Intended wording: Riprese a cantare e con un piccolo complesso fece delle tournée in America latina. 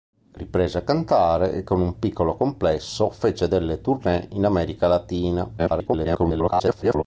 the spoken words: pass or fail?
fail